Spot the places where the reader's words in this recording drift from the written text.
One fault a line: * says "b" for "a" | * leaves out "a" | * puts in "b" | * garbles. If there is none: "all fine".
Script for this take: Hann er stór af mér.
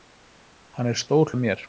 all fine